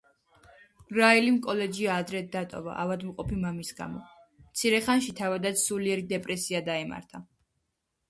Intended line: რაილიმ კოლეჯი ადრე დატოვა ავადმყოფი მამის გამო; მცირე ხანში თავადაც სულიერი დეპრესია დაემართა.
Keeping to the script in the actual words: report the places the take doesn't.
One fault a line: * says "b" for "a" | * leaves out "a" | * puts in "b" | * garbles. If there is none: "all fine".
all fine